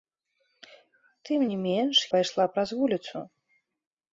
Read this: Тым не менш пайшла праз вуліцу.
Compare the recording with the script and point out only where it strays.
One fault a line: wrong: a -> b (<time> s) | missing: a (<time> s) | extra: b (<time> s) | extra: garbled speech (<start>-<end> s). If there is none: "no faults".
no faults